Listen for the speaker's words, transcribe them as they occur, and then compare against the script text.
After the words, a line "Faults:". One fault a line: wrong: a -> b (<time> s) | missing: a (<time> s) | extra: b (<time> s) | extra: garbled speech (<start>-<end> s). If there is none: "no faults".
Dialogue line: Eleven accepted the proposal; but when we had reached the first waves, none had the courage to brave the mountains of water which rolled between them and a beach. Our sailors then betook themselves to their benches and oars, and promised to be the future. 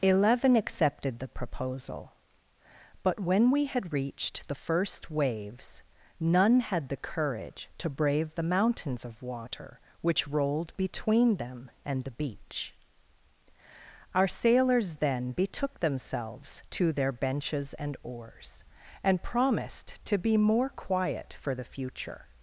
Eleven accepted the proposal; but when we had reached the first waves, none had the courage to brave the mountains of water which rolled between them and the beach. Our sailors then betook themselves to their benches and oars, and promised to be more quiet for the future.
Faults:
wrong: a -> the (12.0 s)
extra: more quiet for (20.4 s)